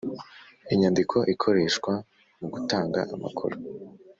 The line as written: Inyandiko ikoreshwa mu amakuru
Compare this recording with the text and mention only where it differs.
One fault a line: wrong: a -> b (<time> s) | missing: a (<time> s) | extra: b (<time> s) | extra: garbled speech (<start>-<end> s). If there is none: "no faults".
extra: gutanga (2.5 s)